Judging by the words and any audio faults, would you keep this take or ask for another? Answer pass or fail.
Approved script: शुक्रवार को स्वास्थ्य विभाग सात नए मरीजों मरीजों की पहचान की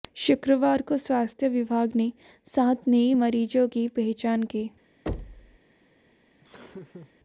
fail